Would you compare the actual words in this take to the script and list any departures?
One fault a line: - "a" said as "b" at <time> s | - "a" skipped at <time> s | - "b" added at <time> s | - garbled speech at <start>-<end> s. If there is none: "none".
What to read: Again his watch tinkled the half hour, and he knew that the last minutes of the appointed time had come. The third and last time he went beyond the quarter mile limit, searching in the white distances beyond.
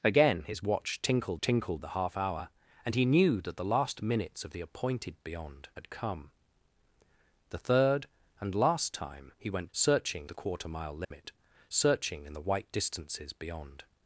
- "tinkled" added at 1.4 s
- "time" said as "beyond" at 5.2 s
- "beyond" said as "searching" at 9.7 s